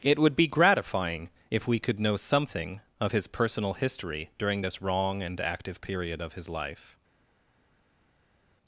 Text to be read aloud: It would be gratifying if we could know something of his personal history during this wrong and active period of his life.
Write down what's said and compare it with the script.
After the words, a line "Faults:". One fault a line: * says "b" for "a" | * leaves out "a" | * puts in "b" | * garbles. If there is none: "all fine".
It would be gratifying if we could know something of his personal history during this wrong and active period of his life.
Faults:
all fine